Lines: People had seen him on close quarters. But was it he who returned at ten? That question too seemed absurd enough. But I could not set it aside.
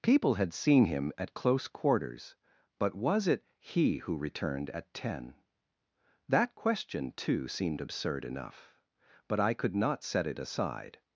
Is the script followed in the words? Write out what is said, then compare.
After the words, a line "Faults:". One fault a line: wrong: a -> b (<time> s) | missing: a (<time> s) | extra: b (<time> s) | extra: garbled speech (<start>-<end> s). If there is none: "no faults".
People had seen him at close quarters. But was it he who returned at ten? That question too seemed absurd enough. But I could not set it aside.
Faults:
wrong: on -> at (1.2 s)